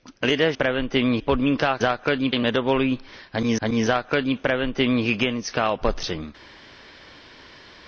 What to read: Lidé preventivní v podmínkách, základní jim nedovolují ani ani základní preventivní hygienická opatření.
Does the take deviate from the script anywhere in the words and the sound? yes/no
no